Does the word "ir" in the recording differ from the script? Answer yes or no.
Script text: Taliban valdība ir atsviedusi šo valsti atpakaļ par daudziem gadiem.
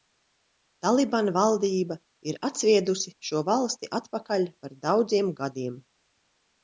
no